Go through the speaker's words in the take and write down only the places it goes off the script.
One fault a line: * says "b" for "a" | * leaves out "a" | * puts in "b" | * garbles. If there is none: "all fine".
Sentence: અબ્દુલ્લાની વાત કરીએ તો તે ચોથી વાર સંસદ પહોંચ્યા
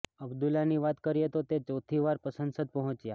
all fine